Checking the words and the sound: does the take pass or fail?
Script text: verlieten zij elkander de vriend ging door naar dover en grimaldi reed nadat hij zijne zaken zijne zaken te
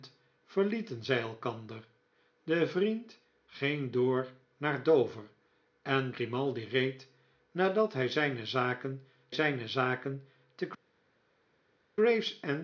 pass